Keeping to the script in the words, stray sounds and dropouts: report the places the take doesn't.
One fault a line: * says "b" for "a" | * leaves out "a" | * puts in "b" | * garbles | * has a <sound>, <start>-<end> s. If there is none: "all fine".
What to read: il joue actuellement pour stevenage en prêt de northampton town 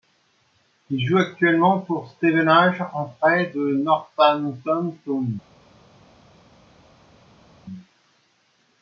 all fine